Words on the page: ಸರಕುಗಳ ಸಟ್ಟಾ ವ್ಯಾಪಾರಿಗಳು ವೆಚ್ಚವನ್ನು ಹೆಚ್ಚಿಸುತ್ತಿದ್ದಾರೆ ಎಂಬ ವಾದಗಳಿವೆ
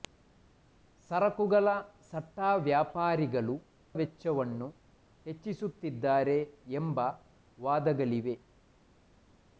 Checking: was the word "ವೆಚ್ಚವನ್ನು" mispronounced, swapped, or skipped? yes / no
no